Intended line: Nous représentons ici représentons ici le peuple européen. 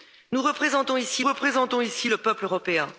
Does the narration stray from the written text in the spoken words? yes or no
no